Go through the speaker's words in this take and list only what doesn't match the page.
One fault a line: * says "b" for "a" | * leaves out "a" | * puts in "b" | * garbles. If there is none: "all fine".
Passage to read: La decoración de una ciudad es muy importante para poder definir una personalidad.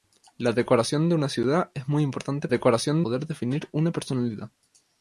* says "decoración" for "para"